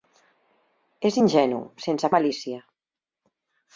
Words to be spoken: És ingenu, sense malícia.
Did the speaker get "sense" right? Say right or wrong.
right